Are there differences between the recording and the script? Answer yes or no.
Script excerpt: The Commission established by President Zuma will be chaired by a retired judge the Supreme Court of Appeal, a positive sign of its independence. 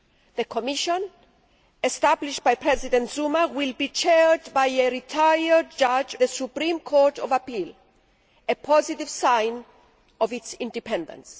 no